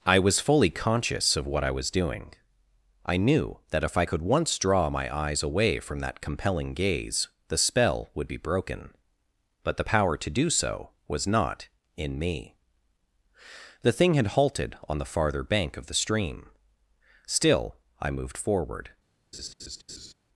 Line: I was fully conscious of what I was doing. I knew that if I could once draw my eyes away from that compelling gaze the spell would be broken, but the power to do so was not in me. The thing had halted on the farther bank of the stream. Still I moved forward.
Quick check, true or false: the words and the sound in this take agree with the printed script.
false